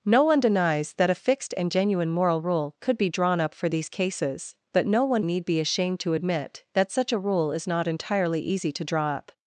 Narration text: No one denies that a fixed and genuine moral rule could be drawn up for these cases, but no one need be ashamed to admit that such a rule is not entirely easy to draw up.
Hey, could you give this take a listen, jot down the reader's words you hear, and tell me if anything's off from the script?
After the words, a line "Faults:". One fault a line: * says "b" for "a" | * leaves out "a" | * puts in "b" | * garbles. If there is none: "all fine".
No one denies that a fixed and genuine moral rule could be drawn up for these cases, but no one need be ashamed to admit that such a rule is not entirely easy to draw up.
Faults:
all fine